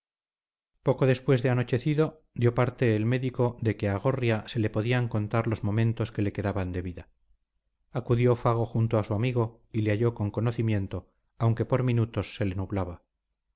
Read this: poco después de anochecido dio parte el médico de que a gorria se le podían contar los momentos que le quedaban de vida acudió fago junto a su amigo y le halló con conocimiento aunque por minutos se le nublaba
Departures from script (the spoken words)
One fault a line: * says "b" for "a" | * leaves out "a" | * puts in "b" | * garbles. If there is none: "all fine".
all fine